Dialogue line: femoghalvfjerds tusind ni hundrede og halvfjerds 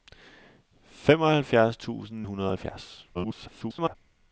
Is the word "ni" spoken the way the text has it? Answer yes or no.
no